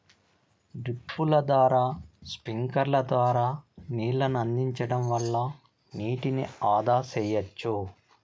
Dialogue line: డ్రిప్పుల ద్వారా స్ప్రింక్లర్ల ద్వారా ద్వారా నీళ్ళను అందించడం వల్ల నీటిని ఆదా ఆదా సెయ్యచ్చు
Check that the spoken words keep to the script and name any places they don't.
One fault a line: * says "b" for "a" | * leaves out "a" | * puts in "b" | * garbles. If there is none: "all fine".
* leaves out "ద్వారా"
* leaves out "ఆదా"